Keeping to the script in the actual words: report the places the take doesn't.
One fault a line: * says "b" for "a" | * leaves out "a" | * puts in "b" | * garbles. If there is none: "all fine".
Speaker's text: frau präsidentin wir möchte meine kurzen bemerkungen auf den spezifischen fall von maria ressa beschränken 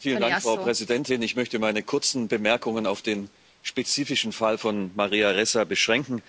* says "ich" for "wir"